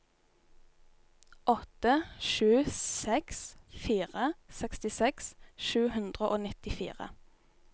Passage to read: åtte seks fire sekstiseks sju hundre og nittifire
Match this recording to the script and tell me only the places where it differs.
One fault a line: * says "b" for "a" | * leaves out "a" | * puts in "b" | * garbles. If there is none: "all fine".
* puts in "sju"